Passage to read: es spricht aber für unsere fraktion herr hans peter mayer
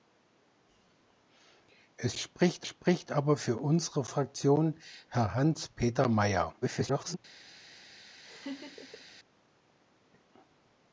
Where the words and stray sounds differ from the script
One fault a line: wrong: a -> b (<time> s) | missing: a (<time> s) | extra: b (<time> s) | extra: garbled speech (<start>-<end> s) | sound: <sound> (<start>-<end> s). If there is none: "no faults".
extra: spricht (2.6 s)
extra: garbled speech (6.6-7.2 s)
sound: laugh (8.2-9.1 s)